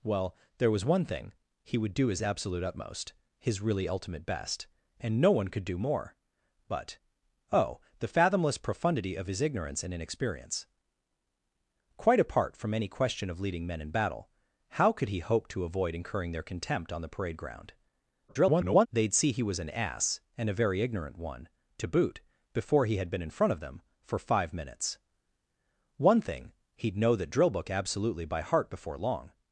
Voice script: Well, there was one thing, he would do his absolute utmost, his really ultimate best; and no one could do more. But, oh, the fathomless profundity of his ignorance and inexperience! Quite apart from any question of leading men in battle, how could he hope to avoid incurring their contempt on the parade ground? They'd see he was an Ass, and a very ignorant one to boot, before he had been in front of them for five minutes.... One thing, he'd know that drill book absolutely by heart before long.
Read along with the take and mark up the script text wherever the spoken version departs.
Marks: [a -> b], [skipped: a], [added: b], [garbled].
Well, there was one thing, he would do his absolute utmost, his really ultimate best; and no one could do more. But, oh, the fathomless profundity of his ignorance and inexperience! Quite apart from any question of leading men in battle, how could he hope to avoid incurring their contempt on the parade ground? [garbled] They'd see he was an Ass, and a very ignorant one to boot, before he had been in front of them for five minutes.... One thing, he'd know that drill book absolutely by heart before long.